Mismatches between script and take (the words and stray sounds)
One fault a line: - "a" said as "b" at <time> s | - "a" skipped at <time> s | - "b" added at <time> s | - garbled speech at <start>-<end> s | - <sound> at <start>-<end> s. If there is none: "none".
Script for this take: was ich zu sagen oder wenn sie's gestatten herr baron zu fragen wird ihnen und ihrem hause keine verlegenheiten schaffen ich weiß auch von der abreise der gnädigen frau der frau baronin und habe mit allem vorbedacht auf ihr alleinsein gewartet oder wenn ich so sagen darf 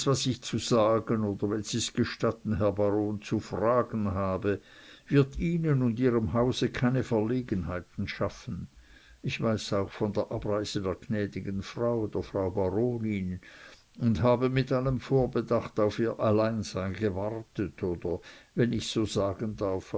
- "habe" added at 4.1 s